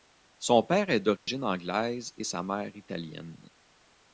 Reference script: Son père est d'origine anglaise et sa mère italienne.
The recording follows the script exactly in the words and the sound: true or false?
false